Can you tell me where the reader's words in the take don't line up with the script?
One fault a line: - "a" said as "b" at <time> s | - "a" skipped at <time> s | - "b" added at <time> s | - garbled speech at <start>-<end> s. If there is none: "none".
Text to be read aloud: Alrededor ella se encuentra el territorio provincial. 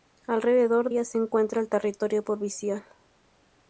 none